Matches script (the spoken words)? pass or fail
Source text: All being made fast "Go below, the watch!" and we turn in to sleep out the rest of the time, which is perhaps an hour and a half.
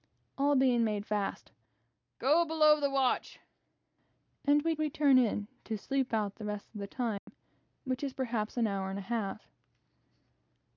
fail